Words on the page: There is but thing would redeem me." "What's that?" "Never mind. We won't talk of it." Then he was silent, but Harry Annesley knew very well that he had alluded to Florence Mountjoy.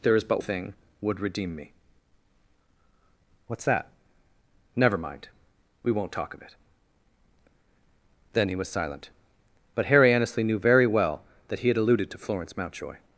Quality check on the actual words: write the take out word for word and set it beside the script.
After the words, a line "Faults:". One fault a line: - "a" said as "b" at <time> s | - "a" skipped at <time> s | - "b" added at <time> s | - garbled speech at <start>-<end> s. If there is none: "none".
There is but thing would redeem me." "What's that?" "Never mind. We won't talk of it." Then he was silent, but Harry Annesley knew very well that he had alluded to Florence Mountjoy.
Faults:
none